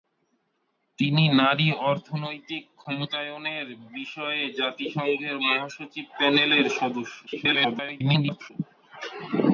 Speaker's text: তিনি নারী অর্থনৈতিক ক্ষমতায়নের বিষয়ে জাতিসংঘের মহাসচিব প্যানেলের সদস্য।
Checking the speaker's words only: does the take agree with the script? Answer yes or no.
no